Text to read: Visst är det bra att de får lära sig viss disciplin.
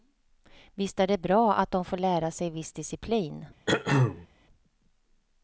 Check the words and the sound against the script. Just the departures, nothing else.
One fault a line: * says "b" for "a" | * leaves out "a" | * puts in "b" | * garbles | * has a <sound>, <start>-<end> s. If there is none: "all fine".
* has a throat clearing, 3.7-4.3 s